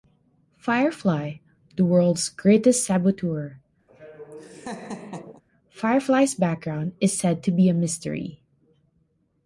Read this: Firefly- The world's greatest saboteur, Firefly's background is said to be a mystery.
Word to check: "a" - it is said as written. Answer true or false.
true